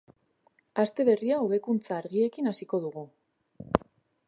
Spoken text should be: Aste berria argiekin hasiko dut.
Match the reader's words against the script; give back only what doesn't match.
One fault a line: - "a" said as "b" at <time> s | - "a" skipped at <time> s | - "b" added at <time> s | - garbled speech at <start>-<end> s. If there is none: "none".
- "hobekuntza" added at 1.4 s
- "dut" said as "dugu" at 2.9 s